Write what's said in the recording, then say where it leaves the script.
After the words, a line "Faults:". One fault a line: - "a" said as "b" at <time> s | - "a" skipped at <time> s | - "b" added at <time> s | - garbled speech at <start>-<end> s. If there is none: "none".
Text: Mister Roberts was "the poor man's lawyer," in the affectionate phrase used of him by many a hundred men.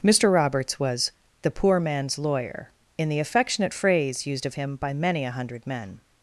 Mister Roberts was "the poor man's lawyer," in the affectionate phrase used of him by many a hundred men.
Faults:
none